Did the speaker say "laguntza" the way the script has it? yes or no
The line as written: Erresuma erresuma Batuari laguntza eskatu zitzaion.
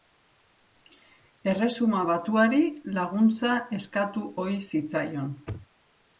yes